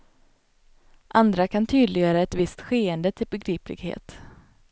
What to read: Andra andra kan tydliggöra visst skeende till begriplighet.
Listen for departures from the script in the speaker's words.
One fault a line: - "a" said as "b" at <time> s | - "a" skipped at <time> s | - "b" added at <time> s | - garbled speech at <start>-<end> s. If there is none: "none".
- "andra" skipped at 1.5 s
- "ett" added at 2.2 s